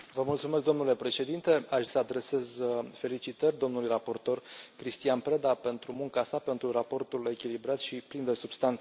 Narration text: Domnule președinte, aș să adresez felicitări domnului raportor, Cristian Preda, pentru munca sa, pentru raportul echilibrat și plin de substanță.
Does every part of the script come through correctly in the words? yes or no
yes